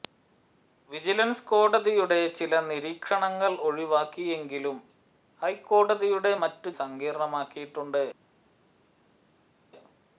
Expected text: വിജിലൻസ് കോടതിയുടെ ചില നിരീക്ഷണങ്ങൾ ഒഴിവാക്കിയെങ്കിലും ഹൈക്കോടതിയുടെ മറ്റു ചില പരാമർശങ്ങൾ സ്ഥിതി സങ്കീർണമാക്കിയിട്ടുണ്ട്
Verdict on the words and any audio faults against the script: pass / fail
fail